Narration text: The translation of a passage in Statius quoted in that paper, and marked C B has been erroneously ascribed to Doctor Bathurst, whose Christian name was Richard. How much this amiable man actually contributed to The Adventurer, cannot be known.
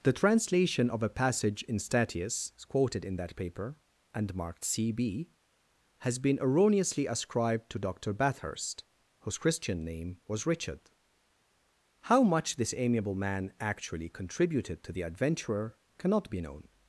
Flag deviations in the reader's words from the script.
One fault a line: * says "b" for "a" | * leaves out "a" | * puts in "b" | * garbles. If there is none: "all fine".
all fine